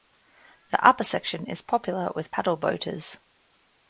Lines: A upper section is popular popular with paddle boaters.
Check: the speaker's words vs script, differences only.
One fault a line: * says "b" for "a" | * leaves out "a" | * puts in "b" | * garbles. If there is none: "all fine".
* says "The" for "A"
* leaves out "popular"